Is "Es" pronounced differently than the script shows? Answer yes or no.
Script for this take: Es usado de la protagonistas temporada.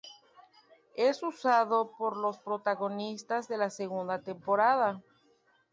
no